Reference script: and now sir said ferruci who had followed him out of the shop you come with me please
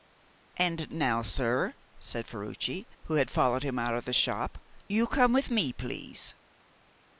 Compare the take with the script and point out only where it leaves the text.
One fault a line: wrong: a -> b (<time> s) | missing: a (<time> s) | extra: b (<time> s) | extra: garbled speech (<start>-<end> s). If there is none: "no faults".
no faults